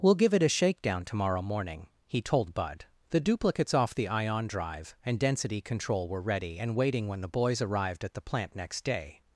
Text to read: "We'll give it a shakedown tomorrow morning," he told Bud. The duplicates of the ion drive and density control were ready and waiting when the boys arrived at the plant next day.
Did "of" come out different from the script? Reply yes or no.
yes